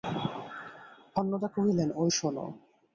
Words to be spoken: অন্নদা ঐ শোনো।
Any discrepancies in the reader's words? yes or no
yes